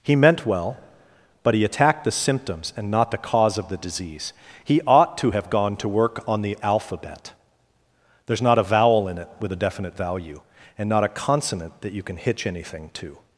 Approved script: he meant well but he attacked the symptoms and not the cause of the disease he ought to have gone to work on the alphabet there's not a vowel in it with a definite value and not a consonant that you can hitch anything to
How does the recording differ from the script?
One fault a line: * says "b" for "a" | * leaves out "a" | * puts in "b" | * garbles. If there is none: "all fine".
all fine